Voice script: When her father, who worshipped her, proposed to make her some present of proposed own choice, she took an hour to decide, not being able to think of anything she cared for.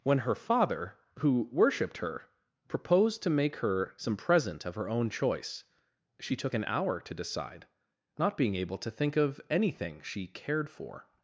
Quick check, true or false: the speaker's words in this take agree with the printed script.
false